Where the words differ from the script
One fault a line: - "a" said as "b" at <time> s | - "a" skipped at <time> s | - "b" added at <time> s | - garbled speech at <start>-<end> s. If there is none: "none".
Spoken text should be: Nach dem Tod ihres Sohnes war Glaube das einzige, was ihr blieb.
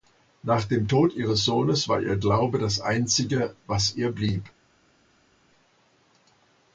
- "ihr" added at 2.0 s